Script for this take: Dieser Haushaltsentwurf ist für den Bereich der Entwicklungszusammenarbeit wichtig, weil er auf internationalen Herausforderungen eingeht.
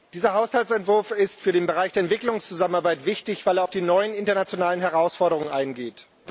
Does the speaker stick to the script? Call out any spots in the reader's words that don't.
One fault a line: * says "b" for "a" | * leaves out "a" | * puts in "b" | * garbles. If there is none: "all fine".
* puts in "die neuen"